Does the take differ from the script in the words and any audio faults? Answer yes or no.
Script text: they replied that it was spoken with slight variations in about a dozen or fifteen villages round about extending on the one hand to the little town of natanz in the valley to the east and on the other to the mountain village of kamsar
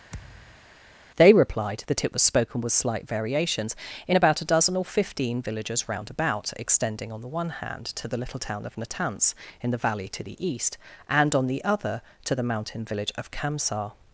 yes